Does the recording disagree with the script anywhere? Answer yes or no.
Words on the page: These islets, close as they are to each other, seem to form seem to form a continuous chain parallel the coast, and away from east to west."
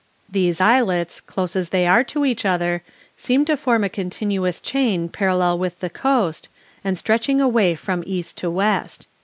yes